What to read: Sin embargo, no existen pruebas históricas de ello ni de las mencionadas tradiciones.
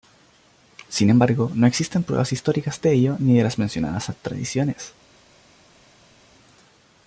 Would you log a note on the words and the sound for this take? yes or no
no